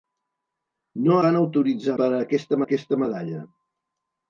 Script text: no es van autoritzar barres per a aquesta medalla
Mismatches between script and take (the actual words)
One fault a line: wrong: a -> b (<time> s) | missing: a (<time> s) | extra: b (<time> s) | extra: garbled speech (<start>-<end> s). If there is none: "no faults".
missing: es (1.2 s)
missing: barres (1.9 s)
extra: aquesta (2.6 s)